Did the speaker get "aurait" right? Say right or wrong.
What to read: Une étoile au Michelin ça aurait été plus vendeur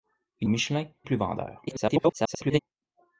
wrong